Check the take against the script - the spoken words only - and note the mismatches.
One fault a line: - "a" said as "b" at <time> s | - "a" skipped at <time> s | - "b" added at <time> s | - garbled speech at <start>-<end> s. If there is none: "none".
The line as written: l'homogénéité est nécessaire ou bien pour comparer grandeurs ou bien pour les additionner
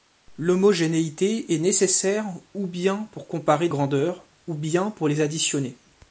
none